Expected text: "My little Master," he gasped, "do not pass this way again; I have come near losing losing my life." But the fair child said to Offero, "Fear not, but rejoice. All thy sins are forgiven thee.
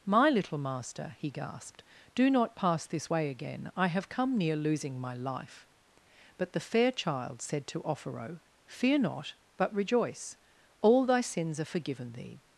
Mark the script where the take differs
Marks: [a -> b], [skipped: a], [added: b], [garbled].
"My little Master," he gasped, "do not pass this way again; I have come near losing [skipped: losing] my life." But the fair child said to Offero, "Fear not, but rejoice. All thy sins are forgiven thee.